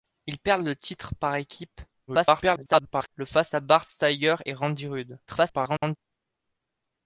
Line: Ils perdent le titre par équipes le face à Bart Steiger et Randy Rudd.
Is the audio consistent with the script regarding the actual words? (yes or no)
no